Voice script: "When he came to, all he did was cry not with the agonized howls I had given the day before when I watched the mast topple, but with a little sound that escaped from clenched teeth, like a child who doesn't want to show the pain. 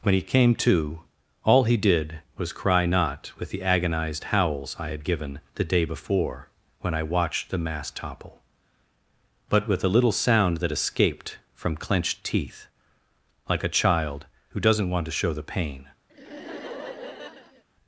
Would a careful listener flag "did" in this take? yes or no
no